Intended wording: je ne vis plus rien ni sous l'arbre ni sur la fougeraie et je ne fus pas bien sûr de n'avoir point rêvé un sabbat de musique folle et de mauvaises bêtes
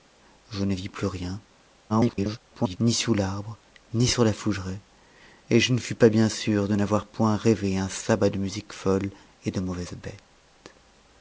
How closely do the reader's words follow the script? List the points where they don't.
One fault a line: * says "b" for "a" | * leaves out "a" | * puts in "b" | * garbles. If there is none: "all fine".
* garbles